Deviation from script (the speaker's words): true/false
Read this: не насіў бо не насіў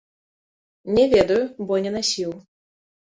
true